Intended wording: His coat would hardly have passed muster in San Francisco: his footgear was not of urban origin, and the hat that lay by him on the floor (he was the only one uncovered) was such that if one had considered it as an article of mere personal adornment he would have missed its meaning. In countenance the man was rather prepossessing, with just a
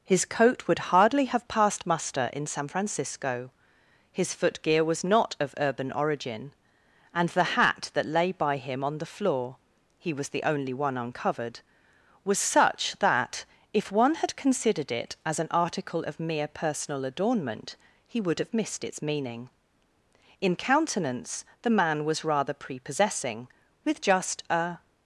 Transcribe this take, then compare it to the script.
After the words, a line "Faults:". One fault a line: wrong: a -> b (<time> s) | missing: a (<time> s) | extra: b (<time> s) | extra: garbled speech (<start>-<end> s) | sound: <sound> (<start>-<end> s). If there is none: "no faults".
His coat would hardly have passed muster in San Francisco: his footgear was not of urban origin, and the hat that lay by him on the floor (he was the only one uncovered) was such that if one had considered it as an article of mere personal adornment he would have missed its meaning. In countenance the man was rather prepossessing, with just a
Faults:
no faults